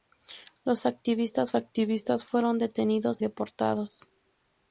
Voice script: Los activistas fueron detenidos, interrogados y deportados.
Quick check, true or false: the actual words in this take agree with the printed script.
false